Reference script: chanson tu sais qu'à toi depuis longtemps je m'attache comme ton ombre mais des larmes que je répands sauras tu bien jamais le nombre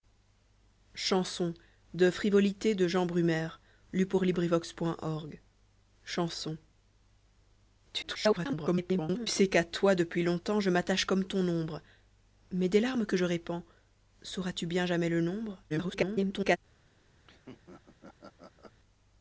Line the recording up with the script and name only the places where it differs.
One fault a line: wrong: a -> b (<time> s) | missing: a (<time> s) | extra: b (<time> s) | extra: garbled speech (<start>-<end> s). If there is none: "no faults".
extra: garbled speech (8.0-9.3 s)
extra: garbled speech (15.7-16.6 s)